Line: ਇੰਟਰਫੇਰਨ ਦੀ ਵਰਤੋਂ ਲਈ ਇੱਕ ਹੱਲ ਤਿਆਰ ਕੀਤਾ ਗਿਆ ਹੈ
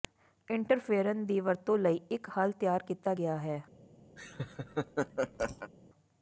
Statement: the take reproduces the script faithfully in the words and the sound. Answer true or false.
false